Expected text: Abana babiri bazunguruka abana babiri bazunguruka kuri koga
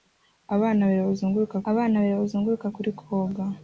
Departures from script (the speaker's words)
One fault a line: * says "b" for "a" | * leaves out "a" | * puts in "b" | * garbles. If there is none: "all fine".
all fine